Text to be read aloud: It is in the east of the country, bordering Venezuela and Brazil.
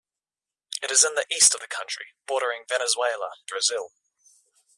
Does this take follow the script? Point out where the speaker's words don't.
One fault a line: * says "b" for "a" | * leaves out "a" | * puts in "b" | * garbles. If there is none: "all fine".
* leaves out "and"